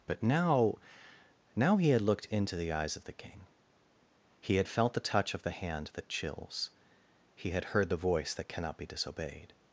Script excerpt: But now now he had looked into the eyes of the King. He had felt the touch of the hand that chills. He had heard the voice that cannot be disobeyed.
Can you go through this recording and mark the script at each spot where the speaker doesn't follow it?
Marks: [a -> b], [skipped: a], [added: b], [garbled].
But now now he had looked into the eyes of the King. He had felt the touch of the hand that chills. He had heard the voice that cannot be disobeyed.